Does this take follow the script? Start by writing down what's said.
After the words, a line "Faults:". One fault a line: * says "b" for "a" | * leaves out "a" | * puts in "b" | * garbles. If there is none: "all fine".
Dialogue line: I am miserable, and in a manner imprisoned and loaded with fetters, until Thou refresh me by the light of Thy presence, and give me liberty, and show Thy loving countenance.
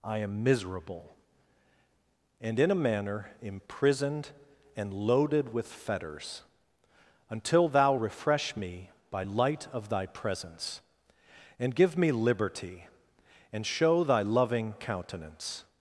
I am miserable, and in a manner imprisoned and loaded with fetters, until Thou refresh me by light of Thy presence, and give me liberty, and show Thy loving countenance.
Faults:
* leaves out "the"